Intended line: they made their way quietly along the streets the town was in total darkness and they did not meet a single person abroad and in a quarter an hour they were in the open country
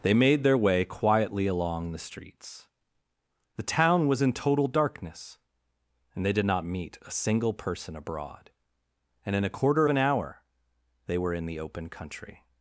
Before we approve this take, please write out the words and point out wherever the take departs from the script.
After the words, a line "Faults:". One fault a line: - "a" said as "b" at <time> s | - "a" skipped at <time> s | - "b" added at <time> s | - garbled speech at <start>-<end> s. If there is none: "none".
they made their way quietly along the streets the town was in total darkness and they did not meet a single person abroad and in a quarter an hour they were in the open country
Faults:
none